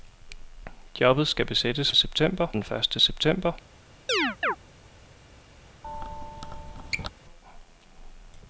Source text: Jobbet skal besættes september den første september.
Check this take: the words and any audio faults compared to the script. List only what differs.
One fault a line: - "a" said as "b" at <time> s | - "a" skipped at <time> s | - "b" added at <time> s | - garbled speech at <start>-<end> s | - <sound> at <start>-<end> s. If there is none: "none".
- chirp at 4.1-4.6 s
- squeak at 5.8-7.1 s